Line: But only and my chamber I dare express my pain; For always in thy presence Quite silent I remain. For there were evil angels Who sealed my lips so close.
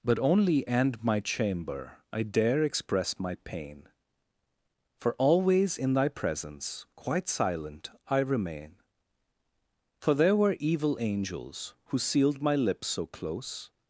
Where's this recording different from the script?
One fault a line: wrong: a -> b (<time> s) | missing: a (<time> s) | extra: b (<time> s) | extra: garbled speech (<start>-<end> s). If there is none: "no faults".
no faults